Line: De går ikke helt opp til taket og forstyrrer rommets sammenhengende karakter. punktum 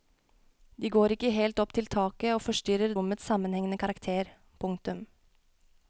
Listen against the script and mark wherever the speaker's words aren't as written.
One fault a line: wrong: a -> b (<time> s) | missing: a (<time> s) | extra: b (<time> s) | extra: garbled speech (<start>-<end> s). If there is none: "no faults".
no faults